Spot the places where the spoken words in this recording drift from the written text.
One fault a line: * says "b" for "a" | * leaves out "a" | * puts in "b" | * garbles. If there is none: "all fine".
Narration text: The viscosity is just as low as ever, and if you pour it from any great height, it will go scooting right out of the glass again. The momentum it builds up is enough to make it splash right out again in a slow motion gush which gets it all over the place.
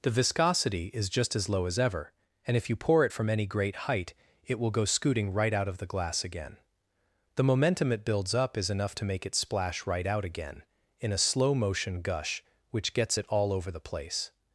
all fine